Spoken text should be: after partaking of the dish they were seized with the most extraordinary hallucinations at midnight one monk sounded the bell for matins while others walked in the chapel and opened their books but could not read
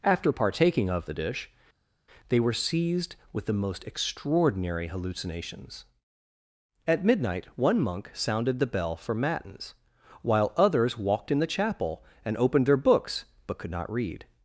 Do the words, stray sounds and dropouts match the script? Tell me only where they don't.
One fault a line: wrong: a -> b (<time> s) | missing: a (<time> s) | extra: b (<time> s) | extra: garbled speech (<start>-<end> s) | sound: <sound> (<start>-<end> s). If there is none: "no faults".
no faults